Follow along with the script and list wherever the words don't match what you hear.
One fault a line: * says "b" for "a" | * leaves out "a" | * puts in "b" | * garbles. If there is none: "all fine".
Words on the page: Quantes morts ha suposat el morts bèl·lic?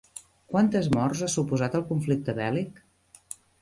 * says "conflicte" for "morts"